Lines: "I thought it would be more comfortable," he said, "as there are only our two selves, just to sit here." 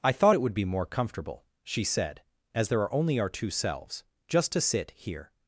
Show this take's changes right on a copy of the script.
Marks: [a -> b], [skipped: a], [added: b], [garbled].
"I thought it would be more comfortable," [he -> she] said, "as there are only our two selves, just to sit here."